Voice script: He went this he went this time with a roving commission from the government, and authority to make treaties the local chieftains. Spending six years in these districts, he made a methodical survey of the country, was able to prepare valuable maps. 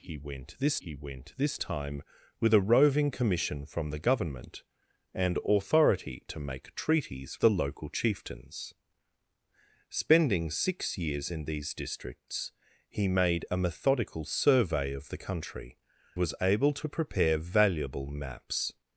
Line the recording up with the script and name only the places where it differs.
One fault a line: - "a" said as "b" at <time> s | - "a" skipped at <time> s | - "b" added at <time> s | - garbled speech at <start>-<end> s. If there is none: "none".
none